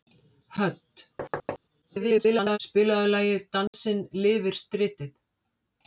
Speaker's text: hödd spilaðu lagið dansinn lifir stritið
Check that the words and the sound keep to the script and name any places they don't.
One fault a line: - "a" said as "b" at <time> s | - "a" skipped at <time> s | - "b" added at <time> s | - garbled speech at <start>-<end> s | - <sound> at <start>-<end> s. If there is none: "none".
- thud at 1.2-1.6 s
- garbled speech at 1.8-2.6 s
- dropout at 3.7-3.7 s